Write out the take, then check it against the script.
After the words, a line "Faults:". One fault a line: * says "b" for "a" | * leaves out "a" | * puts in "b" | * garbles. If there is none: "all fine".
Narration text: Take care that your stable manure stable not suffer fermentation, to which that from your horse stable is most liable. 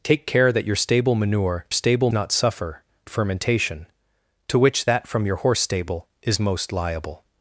Take care that your stable manure stable not suffer fermentation, to which that from your horse stable is most liable.
Faults:
all fine